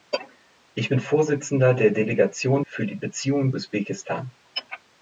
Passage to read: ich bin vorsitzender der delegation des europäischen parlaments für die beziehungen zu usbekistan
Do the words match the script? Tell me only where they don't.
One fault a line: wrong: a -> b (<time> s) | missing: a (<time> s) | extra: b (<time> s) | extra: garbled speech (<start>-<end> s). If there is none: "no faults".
missing: des europäischen parlaments (2.6 s)
missing: zu (3.5 s)